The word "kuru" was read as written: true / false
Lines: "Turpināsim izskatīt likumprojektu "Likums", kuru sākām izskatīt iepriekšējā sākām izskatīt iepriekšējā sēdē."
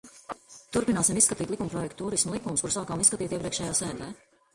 true